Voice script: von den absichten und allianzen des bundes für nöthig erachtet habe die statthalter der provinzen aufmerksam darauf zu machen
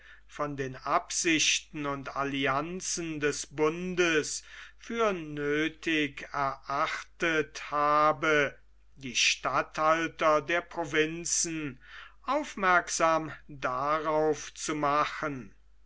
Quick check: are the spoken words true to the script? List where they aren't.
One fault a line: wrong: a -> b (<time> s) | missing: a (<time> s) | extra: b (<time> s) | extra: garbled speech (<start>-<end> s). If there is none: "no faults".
no faults